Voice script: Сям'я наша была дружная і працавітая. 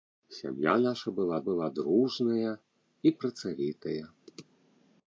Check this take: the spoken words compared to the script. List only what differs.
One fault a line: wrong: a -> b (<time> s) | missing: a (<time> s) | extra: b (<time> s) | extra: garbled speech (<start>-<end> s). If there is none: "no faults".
extra: была (1.5 s)